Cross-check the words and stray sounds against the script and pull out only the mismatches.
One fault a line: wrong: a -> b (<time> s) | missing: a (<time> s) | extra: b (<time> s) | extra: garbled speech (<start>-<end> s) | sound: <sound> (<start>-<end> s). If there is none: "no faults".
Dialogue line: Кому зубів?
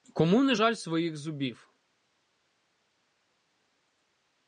extra: не жаль своїх (0.4 s)